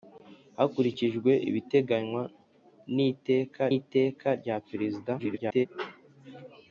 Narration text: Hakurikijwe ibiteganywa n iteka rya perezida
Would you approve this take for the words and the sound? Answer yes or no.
no